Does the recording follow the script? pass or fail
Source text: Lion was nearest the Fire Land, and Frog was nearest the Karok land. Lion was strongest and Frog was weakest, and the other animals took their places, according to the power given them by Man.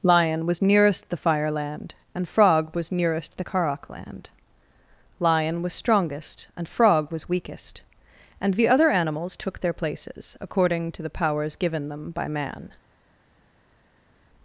fail